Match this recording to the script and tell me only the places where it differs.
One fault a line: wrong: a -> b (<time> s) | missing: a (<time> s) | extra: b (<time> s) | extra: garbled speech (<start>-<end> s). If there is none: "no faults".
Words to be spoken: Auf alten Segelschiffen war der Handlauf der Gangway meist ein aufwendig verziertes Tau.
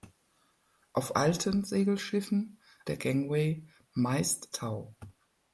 missing: war (2.6 s)
missing: Handlauf der (3.0 s)
missing: ein aufwendig verziertes (4.5 s)